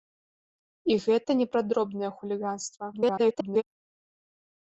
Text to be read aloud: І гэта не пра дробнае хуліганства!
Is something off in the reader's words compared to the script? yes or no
yes